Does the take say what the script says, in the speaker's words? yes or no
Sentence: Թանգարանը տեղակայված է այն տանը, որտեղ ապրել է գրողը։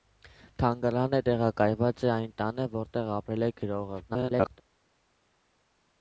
no